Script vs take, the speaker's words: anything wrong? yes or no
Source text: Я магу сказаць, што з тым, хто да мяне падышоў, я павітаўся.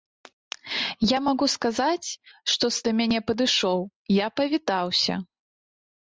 yes